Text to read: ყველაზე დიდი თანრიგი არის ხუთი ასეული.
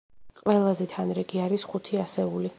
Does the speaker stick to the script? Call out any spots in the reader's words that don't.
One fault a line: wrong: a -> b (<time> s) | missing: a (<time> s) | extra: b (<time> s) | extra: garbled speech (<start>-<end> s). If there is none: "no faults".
missing: დიდი (0.8 s)